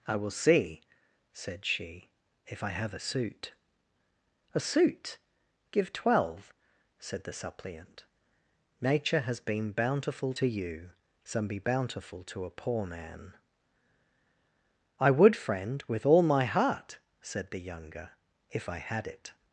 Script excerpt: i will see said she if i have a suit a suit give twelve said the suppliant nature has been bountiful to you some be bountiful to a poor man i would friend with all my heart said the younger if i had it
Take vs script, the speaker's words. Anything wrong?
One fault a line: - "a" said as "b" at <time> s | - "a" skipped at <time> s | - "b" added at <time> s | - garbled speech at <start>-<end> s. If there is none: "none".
none